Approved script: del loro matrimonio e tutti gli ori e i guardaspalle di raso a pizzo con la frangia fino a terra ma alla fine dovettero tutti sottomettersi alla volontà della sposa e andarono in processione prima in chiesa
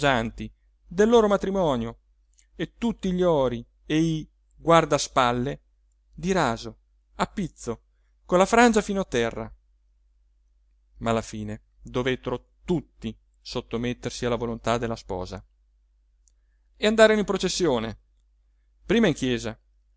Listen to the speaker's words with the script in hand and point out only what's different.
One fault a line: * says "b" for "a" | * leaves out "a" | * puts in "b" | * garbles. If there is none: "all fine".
all fine